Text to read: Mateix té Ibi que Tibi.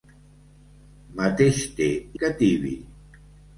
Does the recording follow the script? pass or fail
fail